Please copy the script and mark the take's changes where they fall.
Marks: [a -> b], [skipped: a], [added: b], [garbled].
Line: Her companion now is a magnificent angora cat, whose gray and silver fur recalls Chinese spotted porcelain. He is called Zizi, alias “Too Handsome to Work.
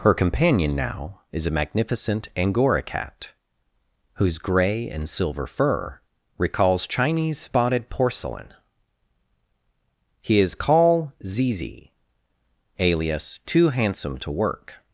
Her companion now is a magnificent angora cat, whose gray and silver fur recalls Chinese spotted porcelain. He is [called -> call] Zizi, alias “Too Handsome to Work.